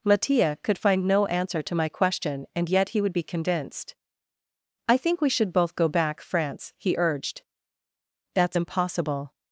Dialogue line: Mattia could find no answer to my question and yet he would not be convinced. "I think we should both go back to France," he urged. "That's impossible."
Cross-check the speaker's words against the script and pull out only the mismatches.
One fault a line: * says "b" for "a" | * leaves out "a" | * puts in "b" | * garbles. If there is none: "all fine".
* leaves out "not"
* leaves out "to"